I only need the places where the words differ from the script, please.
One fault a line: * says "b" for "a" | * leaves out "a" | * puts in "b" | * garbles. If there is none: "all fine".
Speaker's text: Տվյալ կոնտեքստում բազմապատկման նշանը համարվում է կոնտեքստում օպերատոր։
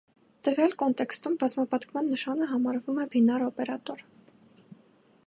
* says "բինար" for "կոնտեքստում"